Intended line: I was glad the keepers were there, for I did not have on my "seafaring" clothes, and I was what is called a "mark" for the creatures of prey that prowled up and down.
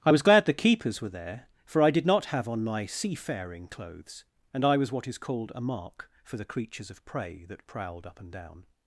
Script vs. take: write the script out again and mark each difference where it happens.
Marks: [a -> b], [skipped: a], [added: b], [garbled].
I was glad the keepers were there, for I did not have on my "seafaring" clothes, and I was what is called a "mark" for the creatures of prey that prowled up and down.